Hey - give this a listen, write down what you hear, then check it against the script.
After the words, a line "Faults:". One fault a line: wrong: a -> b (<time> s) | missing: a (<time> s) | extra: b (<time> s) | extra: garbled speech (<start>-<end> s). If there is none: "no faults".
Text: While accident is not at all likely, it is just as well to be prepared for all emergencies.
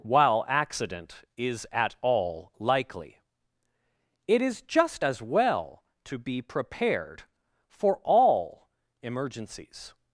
While accident is at all likely, it is just as well to be prepared for all emergencies.
Faults:
missing: not (1.7 s)